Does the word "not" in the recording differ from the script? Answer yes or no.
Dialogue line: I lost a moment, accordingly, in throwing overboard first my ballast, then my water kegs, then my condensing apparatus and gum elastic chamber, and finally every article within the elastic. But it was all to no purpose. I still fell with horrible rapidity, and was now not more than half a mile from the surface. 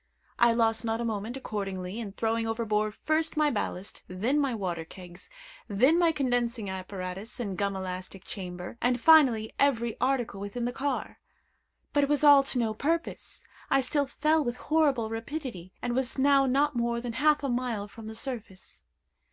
no